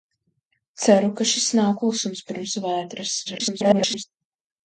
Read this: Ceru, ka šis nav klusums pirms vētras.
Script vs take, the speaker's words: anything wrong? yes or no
yes